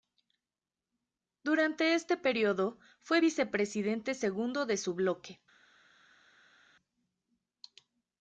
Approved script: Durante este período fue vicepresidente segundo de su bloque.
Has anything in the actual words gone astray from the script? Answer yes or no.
no